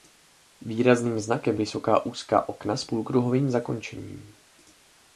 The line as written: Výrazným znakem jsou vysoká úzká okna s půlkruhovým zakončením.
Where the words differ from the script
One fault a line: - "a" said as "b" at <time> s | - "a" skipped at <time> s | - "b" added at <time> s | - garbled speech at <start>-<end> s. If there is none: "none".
- "jsou" skipped at 1.6 s